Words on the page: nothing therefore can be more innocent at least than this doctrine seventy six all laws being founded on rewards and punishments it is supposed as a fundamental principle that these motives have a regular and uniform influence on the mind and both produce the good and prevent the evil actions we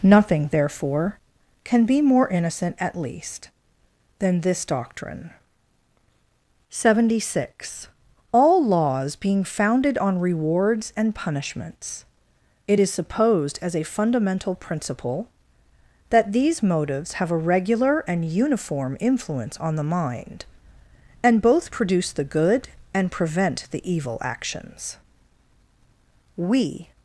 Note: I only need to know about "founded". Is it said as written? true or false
true